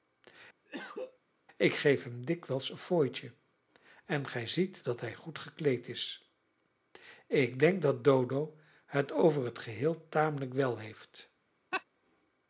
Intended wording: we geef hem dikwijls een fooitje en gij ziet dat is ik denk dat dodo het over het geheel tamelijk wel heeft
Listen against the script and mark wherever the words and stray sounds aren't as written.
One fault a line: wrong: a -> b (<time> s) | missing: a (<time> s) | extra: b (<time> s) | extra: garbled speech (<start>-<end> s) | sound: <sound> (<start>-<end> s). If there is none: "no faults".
sound: cough (0.7-1.2 s)
wrong: we -> ik (1.6 s)
extra: hij goed gekleed (5.0 s)
sound: laugh (11.7-11.8 s)